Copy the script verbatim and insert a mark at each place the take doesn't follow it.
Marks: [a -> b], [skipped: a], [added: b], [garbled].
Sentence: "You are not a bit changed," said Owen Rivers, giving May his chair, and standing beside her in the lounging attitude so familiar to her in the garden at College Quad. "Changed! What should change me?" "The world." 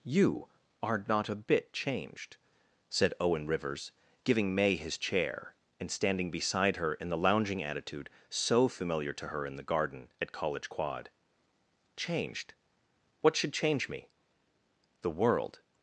"You are not a bit changed," said Owen Rivers, giving May his chair, and standing beside her in the lounging attitude so familiar to her in the garden at College Quad. "Changed! What should change me?" "The world."